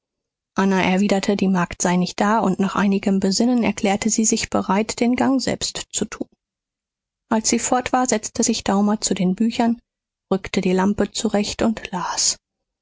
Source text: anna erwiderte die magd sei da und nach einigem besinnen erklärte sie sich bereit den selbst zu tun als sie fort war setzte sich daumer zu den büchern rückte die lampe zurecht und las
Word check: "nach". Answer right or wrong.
right